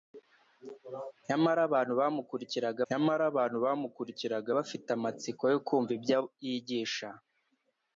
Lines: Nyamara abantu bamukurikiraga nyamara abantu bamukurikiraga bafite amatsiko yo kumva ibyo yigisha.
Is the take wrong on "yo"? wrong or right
right